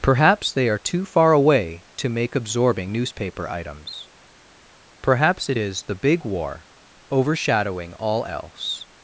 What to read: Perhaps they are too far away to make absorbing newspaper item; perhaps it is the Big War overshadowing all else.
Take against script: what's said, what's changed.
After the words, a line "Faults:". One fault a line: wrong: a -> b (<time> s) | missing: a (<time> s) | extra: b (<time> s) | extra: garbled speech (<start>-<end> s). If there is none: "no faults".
Perhaps they are too far away to make absorbing newspaper items; perhaps it is the Big War overshadowing all else.
Faults:
wrong: item -> items (3.5 s)